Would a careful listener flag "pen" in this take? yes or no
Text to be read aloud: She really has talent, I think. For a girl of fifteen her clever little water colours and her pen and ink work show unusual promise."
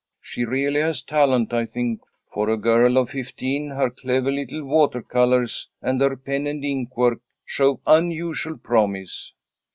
no